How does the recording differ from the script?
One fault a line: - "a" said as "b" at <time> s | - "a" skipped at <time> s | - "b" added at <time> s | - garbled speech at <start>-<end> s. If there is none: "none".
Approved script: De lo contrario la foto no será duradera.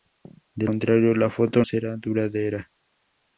- "lo" skipped at 0.7 s
- "no" skipped at 1.6 s